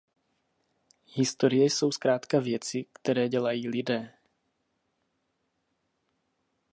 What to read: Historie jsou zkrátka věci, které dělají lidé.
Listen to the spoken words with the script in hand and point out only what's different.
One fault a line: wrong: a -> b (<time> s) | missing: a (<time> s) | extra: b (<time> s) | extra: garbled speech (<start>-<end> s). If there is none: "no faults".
no faults